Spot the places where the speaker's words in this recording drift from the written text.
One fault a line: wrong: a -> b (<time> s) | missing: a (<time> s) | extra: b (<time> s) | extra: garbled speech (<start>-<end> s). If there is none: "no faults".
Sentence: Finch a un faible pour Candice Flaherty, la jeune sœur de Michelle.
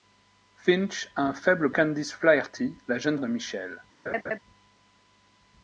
missing: pour (1.7 s)
missing: sœur (3.2 s)